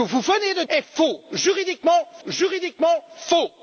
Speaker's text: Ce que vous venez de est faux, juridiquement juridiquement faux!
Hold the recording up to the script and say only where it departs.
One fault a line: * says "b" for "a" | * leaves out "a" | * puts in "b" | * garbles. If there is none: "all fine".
all fine